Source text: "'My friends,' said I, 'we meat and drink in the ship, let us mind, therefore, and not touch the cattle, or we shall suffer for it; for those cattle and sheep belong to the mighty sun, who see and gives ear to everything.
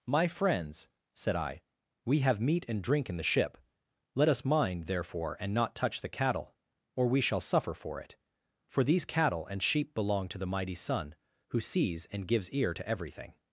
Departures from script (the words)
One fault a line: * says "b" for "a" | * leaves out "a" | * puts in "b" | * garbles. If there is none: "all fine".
* puts in "have"
* says "these" for "those"
* says "sees" for "see"